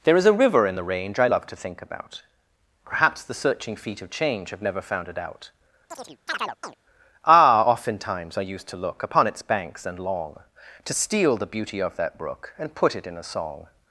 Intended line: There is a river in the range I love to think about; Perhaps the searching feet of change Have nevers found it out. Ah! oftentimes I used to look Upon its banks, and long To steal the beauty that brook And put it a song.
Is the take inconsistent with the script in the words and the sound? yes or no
yes